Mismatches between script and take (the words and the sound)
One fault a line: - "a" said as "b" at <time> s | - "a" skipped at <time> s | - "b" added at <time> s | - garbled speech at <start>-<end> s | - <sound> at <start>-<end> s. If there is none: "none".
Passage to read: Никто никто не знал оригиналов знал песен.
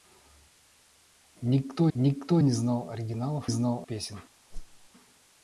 - whoosh at 4.5-4.9 s